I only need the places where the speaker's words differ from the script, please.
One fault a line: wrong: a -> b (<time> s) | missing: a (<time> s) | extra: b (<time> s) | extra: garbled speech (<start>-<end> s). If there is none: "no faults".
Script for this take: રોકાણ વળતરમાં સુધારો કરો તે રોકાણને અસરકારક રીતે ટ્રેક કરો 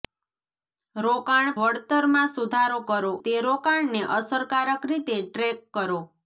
no faults